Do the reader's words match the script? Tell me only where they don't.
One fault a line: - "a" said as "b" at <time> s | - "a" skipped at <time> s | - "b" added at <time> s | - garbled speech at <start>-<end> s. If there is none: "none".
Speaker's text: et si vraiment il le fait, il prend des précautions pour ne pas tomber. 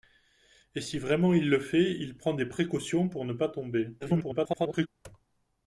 - garbled speech at 4.0-4.9 s